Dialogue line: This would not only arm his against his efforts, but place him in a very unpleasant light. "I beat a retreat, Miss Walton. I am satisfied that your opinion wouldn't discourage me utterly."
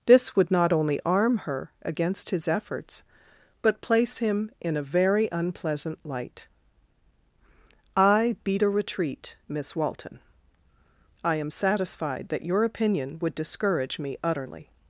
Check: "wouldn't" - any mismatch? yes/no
yes